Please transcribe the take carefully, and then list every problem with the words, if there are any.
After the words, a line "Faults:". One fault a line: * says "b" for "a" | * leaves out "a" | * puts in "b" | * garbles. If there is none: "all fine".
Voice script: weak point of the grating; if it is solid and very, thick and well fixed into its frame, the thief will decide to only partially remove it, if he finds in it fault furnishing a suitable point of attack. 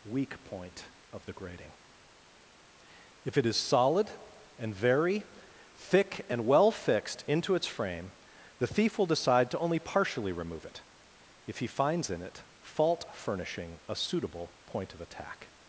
weak point of the grating; if it is solid and very, thick and well fixed into its frame, the thief will decide to only partially remove it, if he finds in it fault furnishing a suitable point of attack.
Faults:
all fine